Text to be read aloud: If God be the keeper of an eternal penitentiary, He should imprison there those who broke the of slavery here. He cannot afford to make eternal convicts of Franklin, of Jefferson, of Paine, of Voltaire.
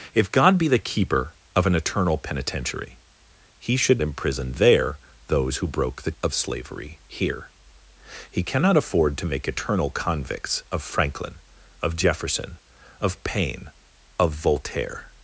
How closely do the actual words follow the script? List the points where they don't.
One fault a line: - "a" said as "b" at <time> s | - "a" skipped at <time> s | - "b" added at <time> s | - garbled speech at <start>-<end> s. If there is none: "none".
none